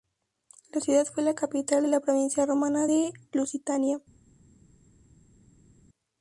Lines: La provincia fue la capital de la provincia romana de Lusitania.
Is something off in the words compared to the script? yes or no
yes